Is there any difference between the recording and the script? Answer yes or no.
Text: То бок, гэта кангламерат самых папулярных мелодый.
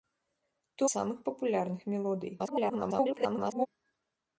yes